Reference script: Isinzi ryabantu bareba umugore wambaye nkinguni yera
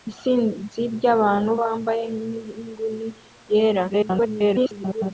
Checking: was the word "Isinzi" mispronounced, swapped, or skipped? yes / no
no